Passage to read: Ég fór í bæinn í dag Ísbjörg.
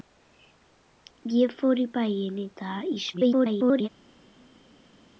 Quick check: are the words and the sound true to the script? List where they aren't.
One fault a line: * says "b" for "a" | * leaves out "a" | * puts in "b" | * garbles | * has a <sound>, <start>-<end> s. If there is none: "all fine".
* garbles